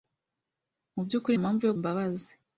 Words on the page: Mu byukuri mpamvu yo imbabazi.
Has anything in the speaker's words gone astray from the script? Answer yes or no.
no